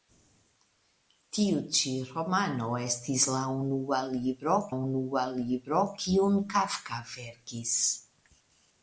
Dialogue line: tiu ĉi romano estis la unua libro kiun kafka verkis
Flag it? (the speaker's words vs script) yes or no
yes